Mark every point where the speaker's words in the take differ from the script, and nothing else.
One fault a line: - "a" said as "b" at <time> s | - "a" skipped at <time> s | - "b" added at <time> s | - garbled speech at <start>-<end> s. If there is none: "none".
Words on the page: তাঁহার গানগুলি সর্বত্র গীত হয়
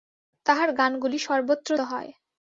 - "গীত" skipped at 1.7 s